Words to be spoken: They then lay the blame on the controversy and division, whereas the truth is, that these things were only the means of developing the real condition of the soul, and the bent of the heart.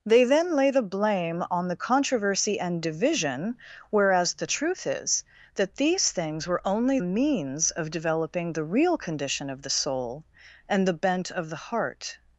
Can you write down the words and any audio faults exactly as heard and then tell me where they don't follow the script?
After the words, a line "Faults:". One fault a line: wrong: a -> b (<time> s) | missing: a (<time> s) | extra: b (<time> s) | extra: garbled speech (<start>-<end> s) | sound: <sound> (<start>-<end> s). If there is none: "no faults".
They then lay the blame on the controversy and division, whereas the truth is, that these things were only means of developing the real condition of the soul, and the bent of the heart.
Faults:
missing: the (7.0 s)